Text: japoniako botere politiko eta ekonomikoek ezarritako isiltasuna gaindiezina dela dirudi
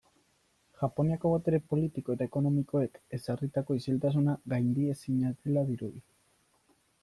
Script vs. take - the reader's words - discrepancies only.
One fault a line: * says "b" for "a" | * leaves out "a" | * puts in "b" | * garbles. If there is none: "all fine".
all fine